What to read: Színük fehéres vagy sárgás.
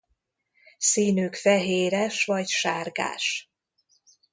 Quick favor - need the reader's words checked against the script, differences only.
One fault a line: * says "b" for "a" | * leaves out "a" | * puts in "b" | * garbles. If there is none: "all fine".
all fine